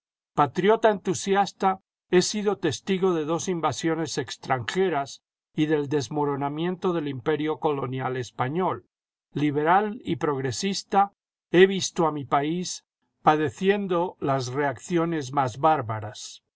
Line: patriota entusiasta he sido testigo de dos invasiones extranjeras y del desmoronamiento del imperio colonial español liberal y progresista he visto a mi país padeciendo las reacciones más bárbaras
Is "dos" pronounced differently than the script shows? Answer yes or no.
no